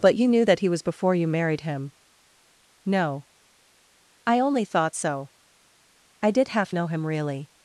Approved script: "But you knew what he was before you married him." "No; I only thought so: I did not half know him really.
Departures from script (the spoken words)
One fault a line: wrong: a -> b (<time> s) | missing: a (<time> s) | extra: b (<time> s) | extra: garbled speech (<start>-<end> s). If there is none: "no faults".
wrong: what -> that (0.4 s)
missing: not (6.5 s)